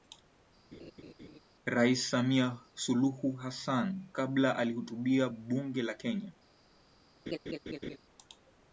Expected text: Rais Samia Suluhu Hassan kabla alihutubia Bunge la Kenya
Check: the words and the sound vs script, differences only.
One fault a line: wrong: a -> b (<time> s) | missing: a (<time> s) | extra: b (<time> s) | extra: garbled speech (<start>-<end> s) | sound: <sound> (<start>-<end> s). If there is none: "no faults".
sound: laugh (0.7-1.4 s)
sound: laugh (7.3-8.0 s)